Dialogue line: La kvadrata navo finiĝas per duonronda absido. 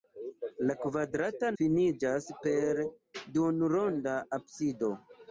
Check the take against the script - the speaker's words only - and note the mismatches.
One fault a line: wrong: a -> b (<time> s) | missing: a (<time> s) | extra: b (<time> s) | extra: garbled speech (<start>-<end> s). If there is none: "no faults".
missing: navo (1.5 s)